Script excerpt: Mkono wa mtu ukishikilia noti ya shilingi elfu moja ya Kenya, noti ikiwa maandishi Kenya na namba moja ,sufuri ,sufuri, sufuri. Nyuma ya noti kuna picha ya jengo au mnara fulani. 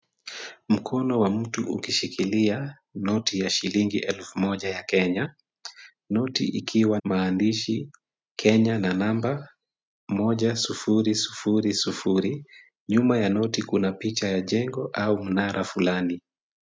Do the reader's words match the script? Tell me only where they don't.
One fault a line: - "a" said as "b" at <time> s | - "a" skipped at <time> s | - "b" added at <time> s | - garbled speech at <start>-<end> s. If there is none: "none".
none